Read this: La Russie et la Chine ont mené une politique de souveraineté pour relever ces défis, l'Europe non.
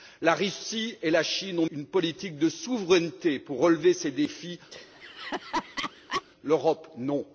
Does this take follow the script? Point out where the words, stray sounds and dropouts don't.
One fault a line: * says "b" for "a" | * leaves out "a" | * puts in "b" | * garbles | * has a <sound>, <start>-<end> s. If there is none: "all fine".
* leaves out "mené"
* has a laugh, 4.7-6.2 s